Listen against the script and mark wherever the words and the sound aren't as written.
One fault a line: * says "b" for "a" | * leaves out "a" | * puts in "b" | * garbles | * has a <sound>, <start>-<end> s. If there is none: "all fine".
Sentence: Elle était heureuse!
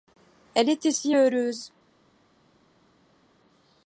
* puts in "si"